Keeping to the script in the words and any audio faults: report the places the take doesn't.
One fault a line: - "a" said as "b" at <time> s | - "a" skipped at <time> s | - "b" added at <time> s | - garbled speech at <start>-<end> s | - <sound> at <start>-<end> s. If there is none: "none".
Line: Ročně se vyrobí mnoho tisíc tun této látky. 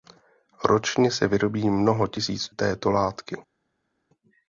- "tun" skipped at 2.5 s